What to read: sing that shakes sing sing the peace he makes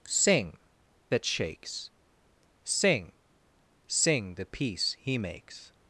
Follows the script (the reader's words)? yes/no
yes